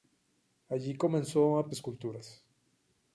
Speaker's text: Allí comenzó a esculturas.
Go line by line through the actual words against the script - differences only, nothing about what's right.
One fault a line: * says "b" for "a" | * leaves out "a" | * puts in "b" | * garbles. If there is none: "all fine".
all fine